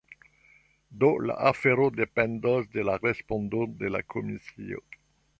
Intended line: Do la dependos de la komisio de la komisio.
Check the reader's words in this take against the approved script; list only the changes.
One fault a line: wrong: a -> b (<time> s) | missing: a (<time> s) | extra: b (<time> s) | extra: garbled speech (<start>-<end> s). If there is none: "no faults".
extra: afero (1.5 s)
wrong: komisio -> respondo (3.0 s)